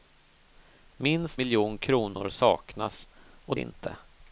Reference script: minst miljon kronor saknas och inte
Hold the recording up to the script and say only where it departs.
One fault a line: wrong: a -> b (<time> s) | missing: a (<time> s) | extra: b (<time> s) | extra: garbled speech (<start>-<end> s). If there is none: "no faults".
no faults